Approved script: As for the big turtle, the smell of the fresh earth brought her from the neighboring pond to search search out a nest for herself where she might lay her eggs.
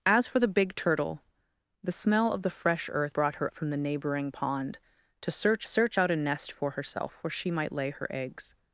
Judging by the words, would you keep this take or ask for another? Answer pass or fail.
pass